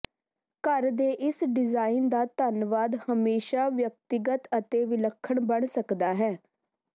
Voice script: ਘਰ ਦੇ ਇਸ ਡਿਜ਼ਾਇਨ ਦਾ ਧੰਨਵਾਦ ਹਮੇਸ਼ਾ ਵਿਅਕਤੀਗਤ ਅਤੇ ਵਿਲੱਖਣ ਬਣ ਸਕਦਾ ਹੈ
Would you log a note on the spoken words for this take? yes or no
no